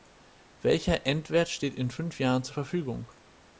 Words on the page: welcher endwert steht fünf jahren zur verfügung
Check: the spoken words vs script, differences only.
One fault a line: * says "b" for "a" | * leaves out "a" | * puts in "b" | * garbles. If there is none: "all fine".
* puts in "in"